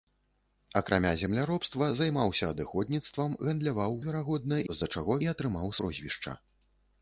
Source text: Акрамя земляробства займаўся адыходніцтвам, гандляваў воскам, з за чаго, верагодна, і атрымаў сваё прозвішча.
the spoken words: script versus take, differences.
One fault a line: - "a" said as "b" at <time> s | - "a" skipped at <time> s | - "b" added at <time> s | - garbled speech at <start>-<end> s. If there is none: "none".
- "воскам" said as "верагодна" at 4.1 s
- "верагодна" skipped at 5.1 s
- "сваё" skipped at 5.7 s